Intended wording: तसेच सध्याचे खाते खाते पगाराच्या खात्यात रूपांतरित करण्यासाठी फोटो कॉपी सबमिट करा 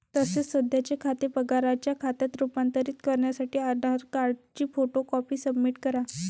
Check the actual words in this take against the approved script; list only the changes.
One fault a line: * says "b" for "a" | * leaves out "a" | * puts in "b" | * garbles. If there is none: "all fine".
* leaves out "खाते"
* puts in "आधार कार्डची"